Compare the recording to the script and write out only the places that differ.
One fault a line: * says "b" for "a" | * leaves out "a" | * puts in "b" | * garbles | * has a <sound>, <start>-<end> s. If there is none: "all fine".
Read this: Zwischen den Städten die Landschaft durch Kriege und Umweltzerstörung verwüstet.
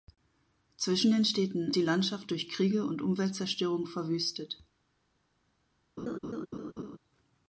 * has a laugh, 6.0-7.0 s